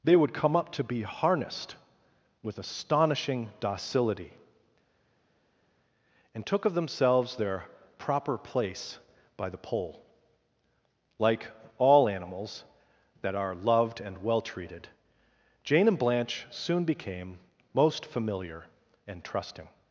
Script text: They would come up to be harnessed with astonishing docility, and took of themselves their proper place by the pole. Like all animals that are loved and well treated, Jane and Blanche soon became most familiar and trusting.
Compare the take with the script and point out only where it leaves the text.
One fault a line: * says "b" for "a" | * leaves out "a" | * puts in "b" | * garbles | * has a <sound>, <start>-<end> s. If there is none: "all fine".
all fine